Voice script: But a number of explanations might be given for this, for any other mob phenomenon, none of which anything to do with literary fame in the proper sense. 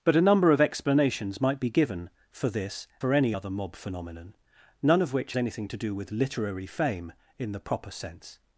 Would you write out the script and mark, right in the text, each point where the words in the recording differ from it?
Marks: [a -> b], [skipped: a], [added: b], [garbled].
But a number of explanations might be given for this, for any other mob phenomenon, none of which anything to do with literary fame in the proper sense.